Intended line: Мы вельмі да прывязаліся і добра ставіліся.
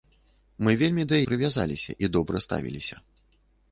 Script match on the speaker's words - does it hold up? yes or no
yes